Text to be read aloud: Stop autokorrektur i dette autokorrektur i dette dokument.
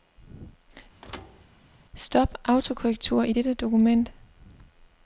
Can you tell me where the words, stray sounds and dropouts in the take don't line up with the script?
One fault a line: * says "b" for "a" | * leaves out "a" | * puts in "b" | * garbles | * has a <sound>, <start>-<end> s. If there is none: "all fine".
* has a thud, 1.0-1.5 s
* leaves out "autokorrektur i dette"